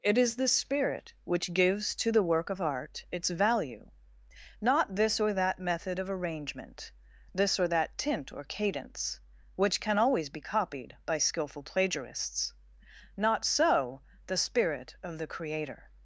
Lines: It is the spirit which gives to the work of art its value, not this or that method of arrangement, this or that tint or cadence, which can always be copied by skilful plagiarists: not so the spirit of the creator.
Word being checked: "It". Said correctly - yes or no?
yes